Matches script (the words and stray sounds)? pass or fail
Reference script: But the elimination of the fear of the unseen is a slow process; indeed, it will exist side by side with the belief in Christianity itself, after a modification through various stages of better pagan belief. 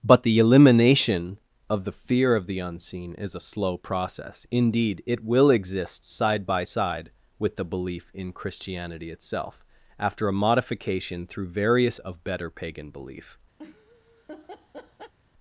fail